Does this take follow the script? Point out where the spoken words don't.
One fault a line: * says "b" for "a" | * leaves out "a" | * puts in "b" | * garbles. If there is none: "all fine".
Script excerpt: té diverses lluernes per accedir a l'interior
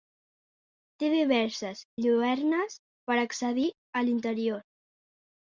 all fine